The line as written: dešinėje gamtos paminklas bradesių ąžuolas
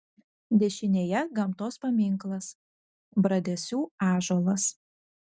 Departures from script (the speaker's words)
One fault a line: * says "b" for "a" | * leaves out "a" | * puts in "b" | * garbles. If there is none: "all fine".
all fine